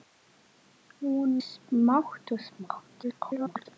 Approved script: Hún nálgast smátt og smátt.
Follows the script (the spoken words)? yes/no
no